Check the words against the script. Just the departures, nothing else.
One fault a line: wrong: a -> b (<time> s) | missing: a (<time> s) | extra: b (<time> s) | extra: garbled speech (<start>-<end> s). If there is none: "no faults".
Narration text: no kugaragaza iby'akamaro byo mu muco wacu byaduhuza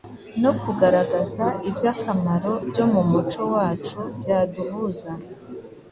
no faults